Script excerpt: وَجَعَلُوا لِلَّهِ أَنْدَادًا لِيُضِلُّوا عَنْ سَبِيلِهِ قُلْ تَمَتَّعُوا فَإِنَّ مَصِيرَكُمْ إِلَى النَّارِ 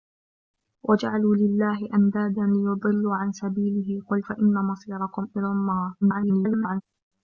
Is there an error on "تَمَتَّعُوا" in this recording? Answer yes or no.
yes